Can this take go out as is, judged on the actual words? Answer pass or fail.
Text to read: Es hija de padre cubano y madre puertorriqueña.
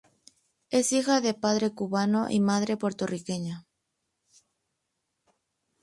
pass